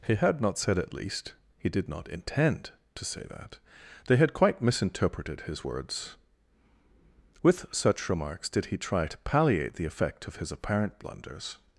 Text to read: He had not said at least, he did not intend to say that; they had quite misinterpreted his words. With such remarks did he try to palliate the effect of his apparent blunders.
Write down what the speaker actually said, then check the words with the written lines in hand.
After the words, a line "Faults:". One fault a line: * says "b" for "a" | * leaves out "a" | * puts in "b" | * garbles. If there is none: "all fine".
He had not said at least, he did not intend to say that; they had quite misinterpreted his words. With such remarks did he try to palliate the effect of his apparent blunders.
Faults:
all fine